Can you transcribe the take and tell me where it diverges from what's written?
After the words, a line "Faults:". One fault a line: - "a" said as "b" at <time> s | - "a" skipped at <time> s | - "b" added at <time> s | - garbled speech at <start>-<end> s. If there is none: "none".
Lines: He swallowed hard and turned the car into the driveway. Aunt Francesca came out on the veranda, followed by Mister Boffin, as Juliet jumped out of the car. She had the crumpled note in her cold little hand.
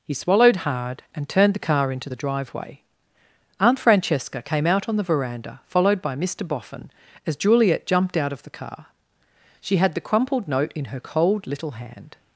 He swallowed hard and turned the car into the driveway. Aunt Francesca came out on the veranda, followed by Mister Boffin, as Juliet jumped out of the car. She had the crumpled note in her cold little hand.
Faults:
none